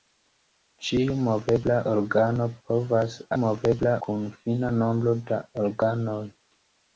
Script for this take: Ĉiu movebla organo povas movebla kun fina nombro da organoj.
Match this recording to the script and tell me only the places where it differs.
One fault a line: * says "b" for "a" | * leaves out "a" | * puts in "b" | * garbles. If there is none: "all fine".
all fine